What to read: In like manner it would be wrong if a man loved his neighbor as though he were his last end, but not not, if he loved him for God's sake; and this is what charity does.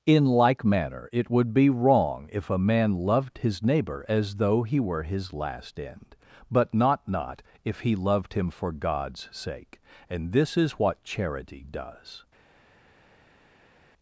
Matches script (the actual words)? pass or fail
pass